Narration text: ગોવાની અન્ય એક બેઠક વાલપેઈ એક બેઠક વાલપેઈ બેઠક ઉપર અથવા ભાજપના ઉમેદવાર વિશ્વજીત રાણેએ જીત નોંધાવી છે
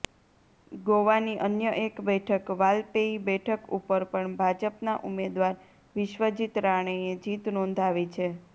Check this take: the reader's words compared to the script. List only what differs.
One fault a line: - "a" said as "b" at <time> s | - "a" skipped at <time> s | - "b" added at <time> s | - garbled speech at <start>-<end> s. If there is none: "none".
- "એક" skipped at 3.2 s
- "વાલપેઈ બેઠક" skipped at 3.7 s
- "અથવા" said as "પણ" at 4.1 s